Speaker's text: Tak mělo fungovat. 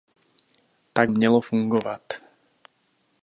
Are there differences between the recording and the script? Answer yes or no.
no